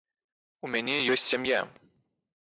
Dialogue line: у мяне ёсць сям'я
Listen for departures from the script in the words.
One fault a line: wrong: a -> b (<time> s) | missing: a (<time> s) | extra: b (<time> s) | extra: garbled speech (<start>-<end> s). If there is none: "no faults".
no faults